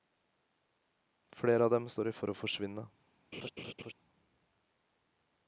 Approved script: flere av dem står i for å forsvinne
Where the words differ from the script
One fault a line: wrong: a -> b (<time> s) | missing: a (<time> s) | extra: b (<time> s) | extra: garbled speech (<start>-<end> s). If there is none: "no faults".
no faults